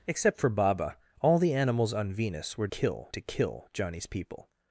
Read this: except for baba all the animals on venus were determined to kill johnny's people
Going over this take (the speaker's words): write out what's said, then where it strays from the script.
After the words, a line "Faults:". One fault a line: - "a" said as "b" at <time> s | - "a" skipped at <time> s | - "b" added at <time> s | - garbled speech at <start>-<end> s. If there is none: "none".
except for baba all the animals on venus were kill to kill johnny's people
Faults:
- "determined" said as "kill" at 2.6 s